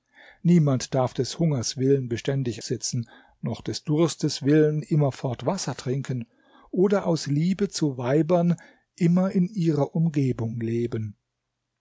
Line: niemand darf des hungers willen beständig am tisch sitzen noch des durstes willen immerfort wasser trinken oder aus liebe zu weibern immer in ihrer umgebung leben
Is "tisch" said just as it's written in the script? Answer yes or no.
no